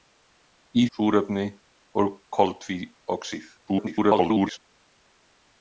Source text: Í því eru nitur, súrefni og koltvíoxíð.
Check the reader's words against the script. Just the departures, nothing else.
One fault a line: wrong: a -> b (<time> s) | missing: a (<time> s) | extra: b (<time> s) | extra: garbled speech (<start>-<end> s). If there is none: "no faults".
missing: því eru nitur (0.8 s)
extra: garbled speech (3.6-4.6 s)